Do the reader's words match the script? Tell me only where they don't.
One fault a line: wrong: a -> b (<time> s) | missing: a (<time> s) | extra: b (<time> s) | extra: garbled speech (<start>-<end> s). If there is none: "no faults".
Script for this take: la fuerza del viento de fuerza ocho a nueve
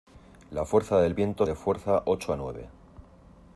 no faults